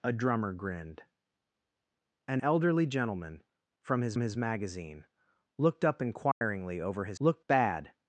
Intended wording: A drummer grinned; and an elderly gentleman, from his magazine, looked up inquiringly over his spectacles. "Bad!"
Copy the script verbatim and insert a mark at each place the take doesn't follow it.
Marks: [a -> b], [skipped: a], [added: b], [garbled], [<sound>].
A drummer grinned; and [skipped: an] elderly gentleman, from his [added: his] magazine, looked up inquiringly [dropout] over his [spectacles. -> looked] "Bad!"